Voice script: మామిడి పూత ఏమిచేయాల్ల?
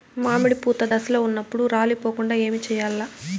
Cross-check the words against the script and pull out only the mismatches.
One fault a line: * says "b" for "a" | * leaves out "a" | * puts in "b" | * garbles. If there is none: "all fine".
* puts in "దశలో ఉన్నప్పుడు రాలిపోకుండ"